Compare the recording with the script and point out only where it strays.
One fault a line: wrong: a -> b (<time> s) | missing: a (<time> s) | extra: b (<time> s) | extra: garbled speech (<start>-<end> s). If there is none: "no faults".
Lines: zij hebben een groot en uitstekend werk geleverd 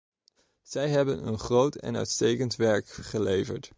no faults